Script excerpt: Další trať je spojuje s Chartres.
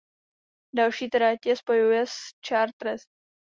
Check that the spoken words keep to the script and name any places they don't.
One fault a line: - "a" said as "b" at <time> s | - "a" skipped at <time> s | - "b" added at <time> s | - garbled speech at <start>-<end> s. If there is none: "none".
none